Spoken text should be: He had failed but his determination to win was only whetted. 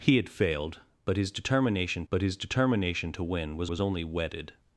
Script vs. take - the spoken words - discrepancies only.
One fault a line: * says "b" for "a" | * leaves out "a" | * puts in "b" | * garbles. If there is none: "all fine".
* puts in "but his determination"
* puts in "was"